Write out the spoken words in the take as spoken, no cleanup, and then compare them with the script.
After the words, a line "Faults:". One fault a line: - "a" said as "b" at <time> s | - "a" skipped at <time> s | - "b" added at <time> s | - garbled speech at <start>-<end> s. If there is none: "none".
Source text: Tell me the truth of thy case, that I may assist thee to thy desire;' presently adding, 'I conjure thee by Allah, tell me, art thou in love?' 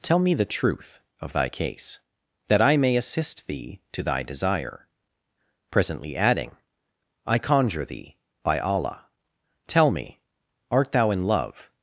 Tell me the truth of thy case, that I may assist thee to thy desire;' presently adding, 'I conjure thee by Allah, tell me, art thou in love?'
Faults:
none